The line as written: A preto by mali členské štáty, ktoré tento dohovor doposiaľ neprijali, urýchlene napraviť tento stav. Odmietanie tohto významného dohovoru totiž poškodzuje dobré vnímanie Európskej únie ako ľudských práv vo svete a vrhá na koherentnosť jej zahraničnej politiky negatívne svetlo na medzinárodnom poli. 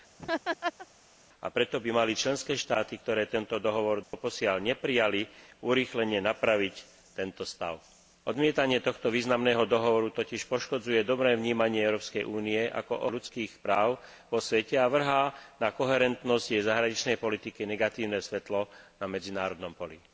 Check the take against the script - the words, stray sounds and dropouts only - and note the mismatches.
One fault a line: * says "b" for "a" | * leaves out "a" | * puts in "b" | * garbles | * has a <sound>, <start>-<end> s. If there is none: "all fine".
* has a laugh, 0.2-0.9 s
* has a dropout, 4.0-4.1 s